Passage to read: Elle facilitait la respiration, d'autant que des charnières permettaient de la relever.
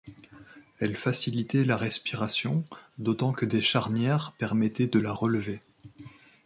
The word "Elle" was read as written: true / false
true